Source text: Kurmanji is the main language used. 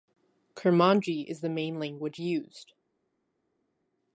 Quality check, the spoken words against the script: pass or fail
pass